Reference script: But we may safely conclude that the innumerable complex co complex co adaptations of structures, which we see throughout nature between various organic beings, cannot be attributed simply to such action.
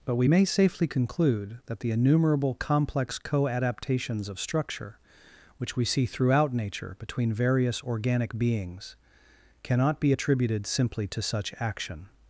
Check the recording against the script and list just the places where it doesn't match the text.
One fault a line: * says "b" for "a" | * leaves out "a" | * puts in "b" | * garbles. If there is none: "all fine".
* leaves out "complex co"
* says "structure" for "structures"